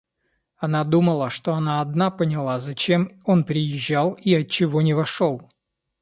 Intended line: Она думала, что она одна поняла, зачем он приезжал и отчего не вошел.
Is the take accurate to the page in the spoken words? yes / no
yes